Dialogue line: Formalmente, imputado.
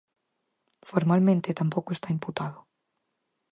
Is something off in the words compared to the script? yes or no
yes